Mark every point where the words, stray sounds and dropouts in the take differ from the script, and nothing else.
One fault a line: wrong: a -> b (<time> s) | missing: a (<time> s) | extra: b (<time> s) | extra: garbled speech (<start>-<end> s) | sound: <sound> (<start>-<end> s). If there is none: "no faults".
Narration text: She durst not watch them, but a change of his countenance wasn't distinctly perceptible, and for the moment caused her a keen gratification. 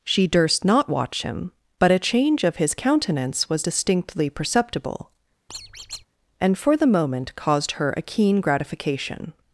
wrong: them -> him (1.2 s)
wrong: wasn't -> was (3.5 s)
sound: squeak (5.5-6.1 s)